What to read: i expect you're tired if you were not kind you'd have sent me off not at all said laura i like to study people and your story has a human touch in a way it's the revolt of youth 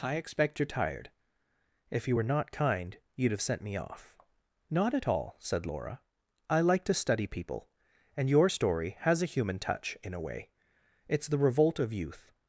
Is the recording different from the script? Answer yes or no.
no